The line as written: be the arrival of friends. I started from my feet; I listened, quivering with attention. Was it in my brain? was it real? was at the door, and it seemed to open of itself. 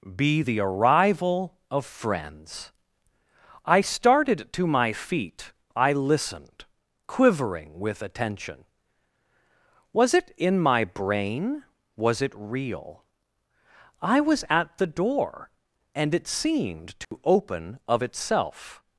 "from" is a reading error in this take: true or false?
true